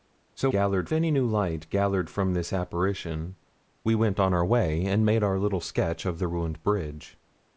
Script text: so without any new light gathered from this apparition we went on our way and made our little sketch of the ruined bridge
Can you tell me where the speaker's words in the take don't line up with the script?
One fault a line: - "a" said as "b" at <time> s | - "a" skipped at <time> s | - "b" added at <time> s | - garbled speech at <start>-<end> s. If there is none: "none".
- "without" said as "gathered" at 0.5 s